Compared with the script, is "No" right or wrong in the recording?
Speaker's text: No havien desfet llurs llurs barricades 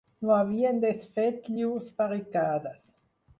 right